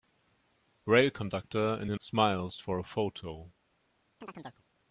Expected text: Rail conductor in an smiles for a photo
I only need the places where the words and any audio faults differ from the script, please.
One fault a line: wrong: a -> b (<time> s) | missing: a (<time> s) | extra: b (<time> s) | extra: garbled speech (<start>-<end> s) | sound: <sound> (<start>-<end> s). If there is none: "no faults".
sound: chirp (4.2-4.6 s)